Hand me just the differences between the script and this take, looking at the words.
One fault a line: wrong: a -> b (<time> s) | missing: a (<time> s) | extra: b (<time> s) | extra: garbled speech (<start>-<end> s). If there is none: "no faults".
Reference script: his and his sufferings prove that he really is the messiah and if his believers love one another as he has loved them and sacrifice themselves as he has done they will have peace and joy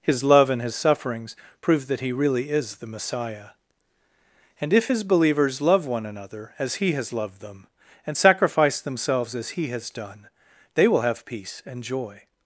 extra: love (0.2 s)